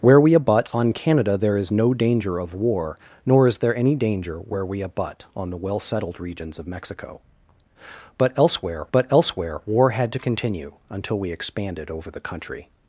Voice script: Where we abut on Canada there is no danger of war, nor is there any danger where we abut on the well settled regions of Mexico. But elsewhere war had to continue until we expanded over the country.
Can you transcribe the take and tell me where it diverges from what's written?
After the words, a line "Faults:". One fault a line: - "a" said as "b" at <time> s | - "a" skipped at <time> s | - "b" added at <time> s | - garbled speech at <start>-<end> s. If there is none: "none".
Where we abut on Canada there is no danger of war, nor is there any danger where we abut on the well settled regions of Mexico. But elsewhere but elsewhere war had to continue until we expanded over the country.
Faults:
- "but elsewhere" added at 8.9 s